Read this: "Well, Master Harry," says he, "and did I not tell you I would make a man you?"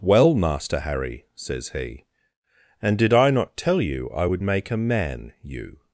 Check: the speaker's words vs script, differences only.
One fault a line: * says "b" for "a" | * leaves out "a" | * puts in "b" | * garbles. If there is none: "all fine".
all fine